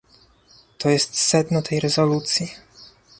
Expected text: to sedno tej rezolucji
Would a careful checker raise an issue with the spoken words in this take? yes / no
yes